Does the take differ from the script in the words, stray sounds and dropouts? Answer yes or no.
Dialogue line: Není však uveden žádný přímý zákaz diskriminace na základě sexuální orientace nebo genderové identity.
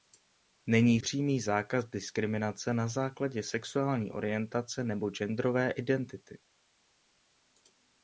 yes